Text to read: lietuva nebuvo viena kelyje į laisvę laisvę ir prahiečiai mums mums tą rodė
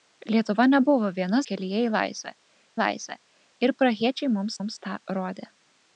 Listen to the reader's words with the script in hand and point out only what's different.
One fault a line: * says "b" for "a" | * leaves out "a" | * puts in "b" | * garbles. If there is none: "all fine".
all fine